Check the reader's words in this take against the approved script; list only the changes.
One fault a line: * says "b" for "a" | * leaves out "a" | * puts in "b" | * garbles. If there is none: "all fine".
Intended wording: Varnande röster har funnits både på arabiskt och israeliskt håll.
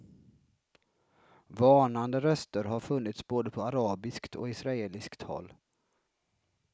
all fine